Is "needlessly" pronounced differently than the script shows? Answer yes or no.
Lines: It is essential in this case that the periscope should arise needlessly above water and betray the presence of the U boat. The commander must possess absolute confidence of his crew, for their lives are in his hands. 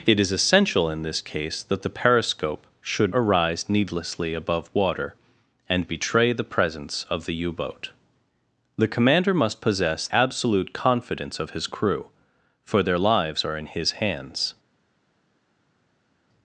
no